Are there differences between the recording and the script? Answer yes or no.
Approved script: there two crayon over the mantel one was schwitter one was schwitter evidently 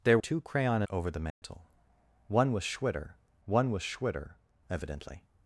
no